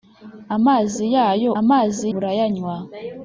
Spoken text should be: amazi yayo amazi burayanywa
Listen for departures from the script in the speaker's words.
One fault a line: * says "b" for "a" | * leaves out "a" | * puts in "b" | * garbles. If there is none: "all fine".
all fine